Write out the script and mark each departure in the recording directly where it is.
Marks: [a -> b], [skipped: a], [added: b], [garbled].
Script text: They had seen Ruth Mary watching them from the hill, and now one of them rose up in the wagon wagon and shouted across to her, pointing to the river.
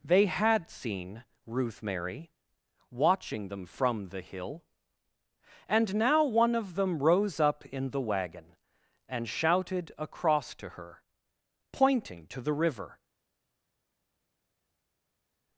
They had seen Ruth Mary watching them from the hill, and now one of them rose up in the wagon [skipped: wagon] and shouted across to her, pointing to the river.